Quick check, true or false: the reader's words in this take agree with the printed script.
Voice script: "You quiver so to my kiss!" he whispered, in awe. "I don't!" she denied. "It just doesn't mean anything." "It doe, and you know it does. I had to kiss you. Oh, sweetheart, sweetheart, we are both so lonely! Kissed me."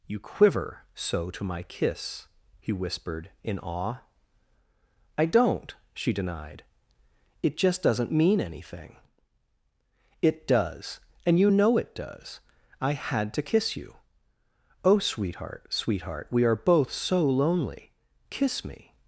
false